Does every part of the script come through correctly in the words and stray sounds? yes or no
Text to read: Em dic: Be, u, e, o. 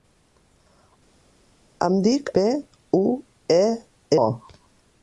yes